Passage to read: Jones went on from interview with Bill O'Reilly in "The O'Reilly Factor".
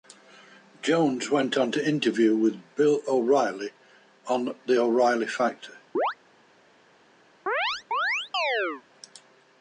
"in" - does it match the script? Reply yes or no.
no